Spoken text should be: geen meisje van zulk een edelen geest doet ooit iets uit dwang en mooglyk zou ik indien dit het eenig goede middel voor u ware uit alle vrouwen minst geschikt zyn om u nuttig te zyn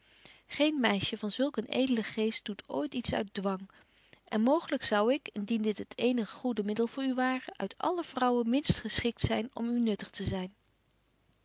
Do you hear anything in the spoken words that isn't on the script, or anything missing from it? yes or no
no